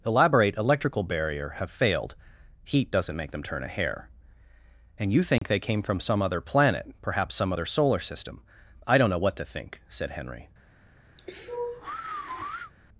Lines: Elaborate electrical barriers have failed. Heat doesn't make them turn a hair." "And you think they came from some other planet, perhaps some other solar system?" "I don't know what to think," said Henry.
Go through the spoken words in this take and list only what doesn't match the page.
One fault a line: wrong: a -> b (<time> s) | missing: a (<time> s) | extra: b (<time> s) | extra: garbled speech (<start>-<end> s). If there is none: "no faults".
wrong: barriers -> barrier (1.0 s)